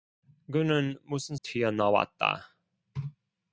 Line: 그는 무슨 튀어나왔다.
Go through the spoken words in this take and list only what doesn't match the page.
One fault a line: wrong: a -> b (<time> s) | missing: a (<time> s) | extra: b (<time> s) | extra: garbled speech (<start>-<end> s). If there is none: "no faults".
no faults